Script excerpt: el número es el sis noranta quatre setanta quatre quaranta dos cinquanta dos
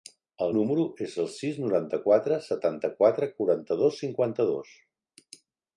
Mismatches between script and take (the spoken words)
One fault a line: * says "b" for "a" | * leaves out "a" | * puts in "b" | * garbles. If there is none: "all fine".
all fine